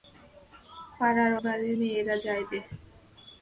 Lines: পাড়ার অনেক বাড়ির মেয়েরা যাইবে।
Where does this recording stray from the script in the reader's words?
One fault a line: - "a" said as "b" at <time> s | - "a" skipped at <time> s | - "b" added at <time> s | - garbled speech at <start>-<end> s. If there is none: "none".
- "অনেক" skipped at 1.3 s